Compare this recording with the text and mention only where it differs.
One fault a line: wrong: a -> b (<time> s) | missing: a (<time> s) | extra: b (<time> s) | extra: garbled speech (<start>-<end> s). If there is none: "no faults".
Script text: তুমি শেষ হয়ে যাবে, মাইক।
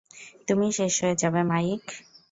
no faults